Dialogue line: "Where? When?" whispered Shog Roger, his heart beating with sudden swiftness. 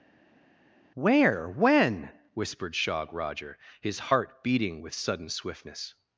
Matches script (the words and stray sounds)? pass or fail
pass